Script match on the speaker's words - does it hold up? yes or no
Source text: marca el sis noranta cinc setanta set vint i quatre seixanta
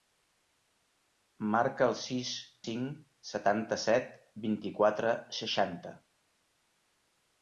no